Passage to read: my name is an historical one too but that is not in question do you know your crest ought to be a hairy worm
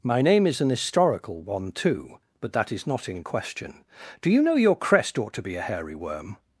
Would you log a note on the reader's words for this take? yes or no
no